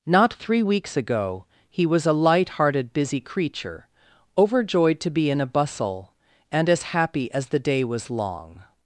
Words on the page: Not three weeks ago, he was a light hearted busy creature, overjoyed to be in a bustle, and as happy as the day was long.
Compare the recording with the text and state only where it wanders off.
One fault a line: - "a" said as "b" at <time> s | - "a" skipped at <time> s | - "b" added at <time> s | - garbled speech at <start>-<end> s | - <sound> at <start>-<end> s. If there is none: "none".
none